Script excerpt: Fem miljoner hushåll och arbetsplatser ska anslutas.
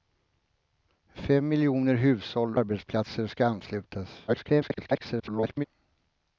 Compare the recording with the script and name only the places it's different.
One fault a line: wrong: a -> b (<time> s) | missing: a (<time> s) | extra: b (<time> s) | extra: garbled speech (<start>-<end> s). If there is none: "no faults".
missing: och (2.6 s)
extra: garbled speech (4.3-5.6 s)